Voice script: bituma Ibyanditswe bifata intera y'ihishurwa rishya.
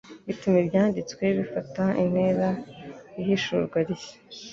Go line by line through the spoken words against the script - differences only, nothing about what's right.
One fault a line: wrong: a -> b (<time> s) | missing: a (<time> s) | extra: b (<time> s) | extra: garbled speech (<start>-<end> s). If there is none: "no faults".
no faults